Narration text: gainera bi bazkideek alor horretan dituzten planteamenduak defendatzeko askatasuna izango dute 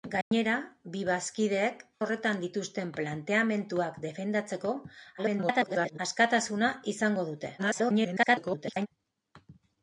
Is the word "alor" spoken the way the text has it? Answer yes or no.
no